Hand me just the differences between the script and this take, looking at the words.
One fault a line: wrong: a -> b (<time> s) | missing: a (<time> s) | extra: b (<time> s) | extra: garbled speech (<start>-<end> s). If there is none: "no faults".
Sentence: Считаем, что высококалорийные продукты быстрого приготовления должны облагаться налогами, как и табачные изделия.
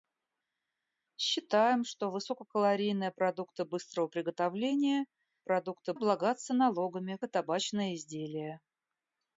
wrong: должны -> продукты (5.4 s)
missing: как (7.2 s)